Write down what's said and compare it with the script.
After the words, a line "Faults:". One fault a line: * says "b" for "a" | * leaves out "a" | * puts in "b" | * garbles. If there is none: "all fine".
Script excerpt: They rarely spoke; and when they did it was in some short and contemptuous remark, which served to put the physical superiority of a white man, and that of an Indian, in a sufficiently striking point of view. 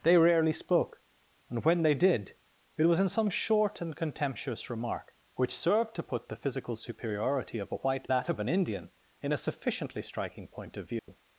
They rarely spoke; and when they did it was in some short and contemptuous remark, which served to put the physical superiority of a white that of an Indian, in a sufficiently striking point of view.
Faults:
* leaves out "man and"